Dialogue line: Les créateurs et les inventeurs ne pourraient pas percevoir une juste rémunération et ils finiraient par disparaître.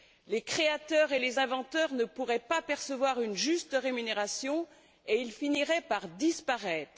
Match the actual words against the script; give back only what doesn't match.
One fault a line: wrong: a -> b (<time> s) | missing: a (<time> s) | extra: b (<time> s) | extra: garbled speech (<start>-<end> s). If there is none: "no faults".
no faults